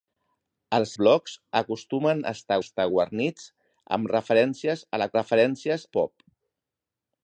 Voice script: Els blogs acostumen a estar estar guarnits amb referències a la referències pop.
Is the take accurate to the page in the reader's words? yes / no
yes